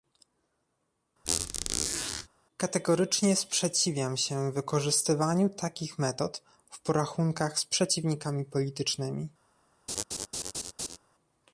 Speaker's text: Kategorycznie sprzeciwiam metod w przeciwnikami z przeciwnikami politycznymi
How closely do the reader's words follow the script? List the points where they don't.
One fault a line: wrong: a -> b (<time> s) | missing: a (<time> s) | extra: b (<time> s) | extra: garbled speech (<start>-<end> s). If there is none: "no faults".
extra: się wykorzystywaniu takich (4.2 s)
wrong: przeciwnikami -> porachunkach (6.8 s)